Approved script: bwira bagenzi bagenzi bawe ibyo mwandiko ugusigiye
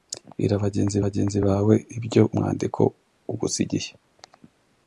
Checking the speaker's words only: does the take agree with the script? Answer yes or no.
yes